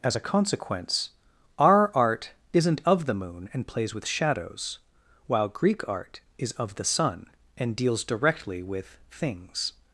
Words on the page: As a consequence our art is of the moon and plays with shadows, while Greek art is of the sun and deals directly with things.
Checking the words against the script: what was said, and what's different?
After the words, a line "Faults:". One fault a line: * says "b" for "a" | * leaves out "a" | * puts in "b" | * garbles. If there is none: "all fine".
As a consequence our art isn't of the moon and plays with shadows, while Greek art is of the sun and deals directly with things.
Faults:
* says "isn't" for "is"